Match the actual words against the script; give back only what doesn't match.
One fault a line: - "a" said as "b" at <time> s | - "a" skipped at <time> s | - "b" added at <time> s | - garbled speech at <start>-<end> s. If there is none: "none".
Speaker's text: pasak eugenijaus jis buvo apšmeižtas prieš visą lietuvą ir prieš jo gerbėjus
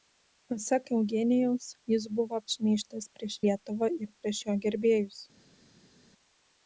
- "visą" skipped at 3.4 s